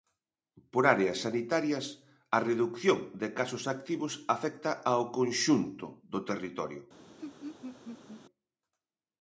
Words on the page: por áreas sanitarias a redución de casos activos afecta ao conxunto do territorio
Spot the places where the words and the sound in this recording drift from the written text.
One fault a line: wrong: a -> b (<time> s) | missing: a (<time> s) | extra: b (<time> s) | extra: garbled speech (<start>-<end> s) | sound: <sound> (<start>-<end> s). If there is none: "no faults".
sound: laugh (7.2-8.2 s)